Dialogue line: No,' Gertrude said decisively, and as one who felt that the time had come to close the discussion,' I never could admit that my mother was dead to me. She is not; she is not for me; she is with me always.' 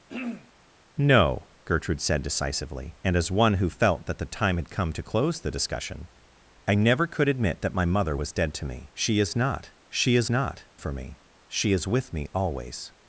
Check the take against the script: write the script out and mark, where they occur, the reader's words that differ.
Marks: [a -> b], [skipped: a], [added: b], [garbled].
No,' Gertrude said decisively, and as one who felt that the time had come to close the discussion,' I never could admit that my mother was dead to me. She is not; she is not for me; she is with me always.'